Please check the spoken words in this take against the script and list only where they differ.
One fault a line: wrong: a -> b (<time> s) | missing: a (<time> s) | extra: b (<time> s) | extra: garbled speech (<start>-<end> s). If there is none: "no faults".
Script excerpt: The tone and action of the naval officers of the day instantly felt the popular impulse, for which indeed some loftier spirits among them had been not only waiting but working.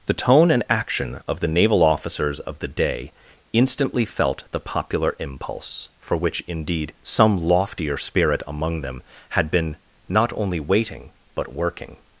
wrong: spirits -> spirit (8.0 s)